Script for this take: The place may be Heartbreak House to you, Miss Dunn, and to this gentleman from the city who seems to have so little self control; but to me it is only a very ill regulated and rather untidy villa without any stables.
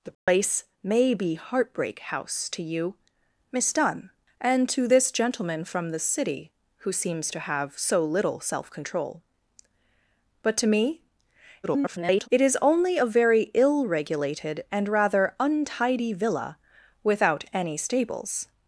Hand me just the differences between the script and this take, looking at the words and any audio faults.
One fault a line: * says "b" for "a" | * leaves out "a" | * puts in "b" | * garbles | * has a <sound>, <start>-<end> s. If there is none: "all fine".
* has a dropout, 0.1-0.3 s
* garbles